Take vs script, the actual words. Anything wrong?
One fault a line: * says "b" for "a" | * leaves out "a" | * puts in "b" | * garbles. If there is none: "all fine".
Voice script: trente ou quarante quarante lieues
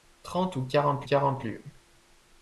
all fine